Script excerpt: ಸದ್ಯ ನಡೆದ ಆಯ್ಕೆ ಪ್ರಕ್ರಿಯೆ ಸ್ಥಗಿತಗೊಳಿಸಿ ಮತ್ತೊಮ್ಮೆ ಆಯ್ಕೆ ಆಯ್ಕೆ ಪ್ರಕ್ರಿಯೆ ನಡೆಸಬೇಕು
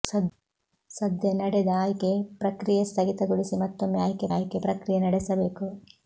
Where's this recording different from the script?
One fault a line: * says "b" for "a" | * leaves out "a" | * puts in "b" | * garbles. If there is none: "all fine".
all fine